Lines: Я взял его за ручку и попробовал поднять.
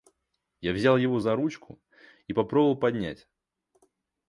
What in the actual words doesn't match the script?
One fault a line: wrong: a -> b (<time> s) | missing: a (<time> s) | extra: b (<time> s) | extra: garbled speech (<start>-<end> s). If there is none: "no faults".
no faults